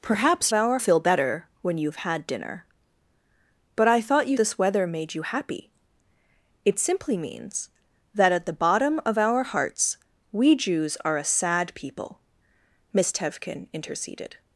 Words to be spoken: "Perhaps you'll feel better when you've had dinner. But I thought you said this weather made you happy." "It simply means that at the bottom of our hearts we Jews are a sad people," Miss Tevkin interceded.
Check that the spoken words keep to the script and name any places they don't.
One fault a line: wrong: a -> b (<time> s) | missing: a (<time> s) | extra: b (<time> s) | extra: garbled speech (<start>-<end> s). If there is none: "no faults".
wrong: you'll -> our (0.5 s)
missing: said (4.4 s)